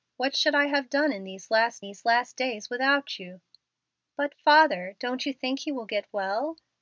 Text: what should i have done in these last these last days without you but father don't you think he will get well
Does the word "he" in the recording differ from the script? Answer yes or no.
no